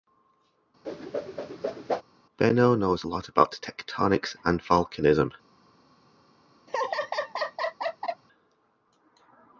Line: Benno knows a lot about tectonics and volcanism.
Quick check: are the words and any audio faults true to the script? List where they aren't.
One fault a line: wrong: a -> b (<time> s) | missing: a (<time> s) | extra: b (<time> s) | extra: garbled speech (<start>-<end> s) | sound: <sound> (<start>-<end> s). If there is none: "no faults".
sound: whoosh (0.8-2.0 s)
sound: laugh (6.7-8.2 s)